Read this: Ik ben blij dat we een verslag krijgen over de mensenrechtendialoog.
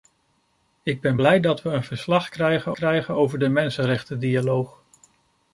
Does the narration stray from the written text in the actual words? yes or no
yes